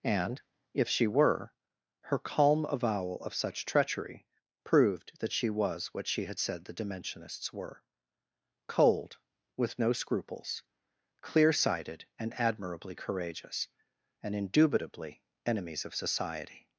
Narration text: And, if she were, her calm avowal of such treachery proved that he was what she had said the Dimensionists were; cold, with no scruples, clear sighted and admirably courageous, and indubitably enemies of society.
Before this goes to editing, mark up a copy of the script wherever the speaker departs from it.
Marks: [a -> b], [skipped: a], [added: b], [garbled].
And, if she were, her calm avowal of such treachery proved that [he -> she] was what she had said the Dimensionists were; cold, with no scruples, clear sighted and admirably courageous, and indubitably enemies of society.